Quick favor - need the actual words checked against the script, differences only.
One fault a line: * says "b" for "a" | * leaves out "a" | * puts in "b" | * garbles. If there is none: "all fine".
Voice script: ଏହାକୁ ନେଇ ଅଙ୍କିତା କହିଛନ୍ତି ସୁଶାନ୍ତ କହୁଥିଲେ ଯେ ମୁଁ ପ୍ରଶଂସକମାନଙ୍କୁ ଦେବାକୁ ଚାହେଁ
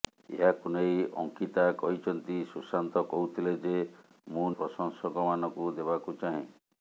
all fine